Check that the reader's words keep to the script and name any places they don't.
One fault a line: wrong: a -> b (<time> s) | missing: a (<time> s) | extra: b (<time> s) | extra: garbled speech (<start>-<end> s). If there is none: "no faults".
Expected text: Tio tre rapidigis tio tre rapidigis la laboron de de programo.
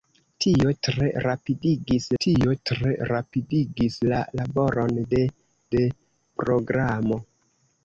no faults